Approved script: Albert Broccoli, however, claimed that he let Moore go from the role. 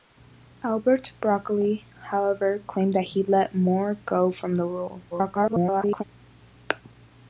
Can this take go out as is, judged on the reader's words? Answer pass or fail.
fail